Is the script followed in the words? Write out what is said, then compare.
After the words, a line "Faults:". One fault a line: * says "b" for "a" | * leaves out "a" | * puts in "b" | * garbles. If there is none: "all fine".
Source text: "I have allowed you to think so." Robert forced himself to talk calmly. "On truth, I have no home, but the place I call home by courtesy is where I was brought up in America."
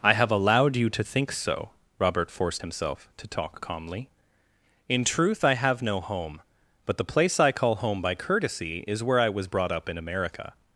"I have allowed you to think so." Robert forced himself to talk calmly. "In truth, I have no home, but the place I call home by courtesy is where I was brought up in America."
Faults:
* says "In" for "On"